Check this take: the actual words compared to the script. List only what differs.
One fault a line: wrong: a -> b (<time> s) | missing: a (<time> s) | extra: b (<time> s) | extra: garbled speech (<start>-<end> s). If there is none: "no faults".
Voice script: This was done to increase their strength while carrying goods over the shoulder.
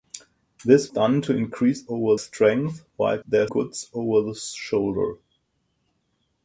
missing: was (0.9 s)
wrong: their -> over (1.9 s)
wrong: carrying -> their (3.2 s)